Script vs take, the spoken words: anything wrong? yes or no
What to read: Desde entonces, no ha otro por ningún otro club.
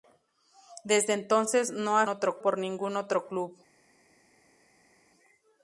no